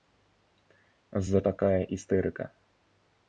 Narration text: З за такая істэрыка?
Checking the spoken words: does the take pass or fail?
pass